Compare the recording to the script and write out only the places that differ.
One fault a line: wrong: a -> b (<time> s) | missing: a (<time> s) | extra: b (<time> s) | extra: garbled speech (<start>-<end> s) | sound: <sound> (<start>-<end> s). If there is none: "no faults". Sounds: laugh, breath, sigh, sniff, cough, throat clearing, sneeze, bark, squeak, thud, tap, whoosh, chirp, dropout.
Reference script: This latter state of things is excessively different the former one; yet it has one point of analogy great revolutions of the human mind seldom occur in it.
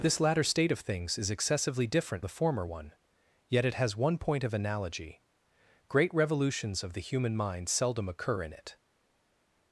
no faults